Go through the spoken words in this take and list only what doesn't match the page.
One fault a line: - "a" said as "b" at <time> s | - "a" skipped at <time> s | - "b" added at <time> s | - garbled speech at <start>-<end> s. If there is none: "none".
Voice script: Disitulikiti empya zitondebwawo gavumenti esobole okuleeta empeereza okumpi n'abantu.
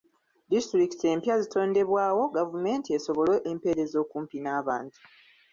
- "okuleeta" skipped at 3.4 s